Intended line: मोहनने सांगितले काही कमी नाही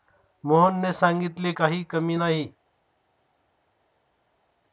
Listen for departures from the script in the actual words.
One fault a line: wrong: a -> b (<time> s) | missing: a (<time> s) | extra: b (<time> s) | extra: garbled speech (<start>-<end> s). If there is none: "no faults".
no faults